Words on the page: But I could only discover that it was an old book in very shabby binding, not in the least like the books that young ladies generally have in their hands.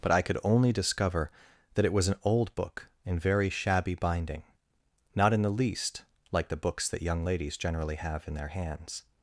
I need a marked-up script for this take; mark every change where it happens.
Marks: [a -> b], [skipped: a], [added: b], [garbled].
But I could only discover that it was an old book in very shabby binding, not in the least like the books that young ladies generally have in their hands.